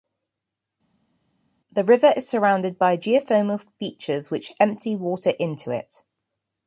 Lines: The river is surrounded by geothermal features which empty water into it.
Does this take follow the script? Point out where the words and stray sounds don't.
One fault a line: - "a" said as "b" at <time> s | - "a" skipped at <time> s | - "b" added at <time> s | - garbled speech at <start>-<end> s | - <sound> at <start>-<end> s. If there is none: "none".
none